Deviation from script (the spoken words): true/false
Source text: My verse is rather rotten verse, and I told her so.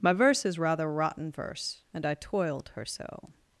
true